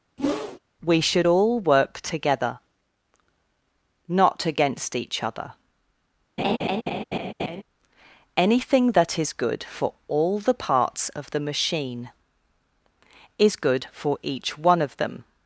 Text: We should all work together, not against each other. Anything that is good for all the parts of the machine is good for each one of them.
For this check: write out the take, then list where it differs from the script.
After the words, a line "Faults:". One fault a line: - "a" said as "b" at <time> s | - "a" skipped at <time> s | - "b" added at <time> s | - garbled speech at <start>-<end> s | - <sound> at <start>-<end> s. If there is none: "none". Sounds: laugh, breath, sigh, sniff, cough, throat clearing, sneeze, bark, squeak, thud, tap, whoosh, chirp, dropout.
We should all work together, not against each other. Anything that is good for all the parts of the machine is good for each one of them.
Faults:
- whoosh at 0.2-0.6 s
- laugh at 6.4-7.6 s